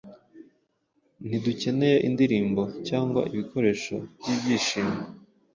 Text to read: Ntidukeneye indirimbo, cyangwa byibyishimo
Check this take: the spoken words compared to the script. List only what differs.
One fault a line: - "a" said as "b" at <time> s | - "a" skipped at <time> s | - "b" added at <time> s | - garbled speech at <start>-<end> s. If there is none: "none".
- "ibikoresho" added at 3.3 s